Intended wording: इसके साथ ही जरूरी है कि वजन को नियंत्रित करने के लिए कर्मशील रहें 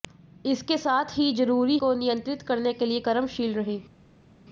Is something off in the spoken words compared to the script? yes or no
yes